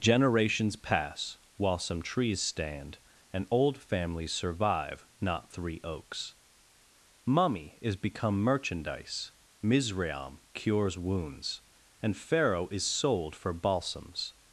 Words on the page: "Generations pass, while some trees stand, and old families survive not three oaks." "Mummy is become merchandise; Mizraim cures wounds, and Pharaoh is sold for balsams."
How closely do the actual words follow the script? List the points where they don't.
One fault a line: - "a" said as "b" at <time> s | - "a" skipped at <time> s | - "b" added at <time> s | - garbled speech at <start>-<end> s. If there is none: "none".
none